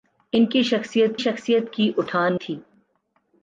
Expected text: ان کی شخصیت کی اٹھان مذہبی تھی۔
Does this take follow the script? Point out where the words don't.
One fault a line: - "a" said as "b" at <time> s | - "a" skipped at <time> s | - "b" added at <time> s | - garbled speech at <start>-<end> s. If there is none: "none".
- "شخصیت" added at 1.2 s
- "مذہبی" skipped at 2.4 s